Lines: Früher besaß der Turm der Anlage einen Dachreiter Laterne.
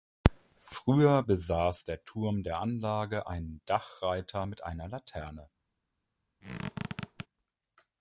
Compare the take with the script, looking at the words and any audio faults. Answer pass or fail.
fail